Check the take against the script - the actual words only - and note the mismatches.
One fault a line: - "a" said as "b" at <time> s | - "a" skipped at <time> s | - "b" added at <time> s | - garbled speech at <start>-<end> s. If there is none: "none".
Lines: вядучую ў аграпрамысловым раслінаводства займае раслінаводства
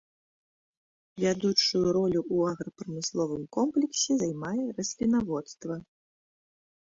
- "ролю" added at 2.0 s
- "раслінаводства" said as "комплексе" at 3.6 s